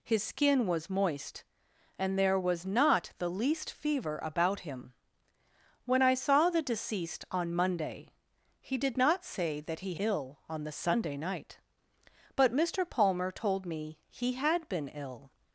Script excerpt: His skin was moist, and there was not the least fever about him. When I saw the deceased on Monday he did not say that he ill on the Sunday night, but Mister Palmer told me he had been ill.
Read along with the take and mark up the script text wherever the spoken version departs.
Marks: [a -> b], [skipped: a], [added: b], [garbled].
His skin was moist, and there was not the least fever about him. When I saw the deceased on Monday he did not say that he ill on the Sunday night, but Mister Palmer told me he had been ill.